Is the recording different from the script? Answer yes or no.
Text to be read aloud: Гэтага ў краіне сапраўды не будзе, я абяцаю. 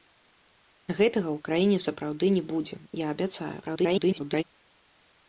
yes